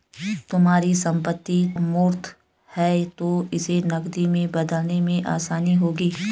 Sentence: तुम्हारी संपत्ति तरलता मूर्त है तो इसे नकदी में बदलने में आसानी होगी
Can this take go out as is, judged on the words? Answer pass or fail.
fail